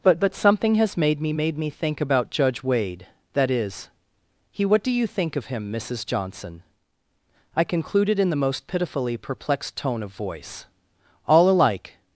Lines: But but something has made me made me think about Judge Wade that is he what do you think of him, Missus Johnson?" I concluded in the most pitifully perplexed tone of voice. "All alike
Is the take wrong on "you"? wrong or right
right